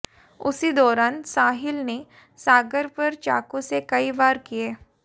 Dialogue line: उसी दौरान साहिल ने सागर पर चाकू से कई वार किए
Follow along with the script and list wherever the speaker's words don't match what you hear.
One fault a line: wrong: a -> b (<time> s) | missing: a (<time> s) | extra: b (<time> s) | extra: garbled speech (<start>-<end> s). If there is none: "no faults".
no faults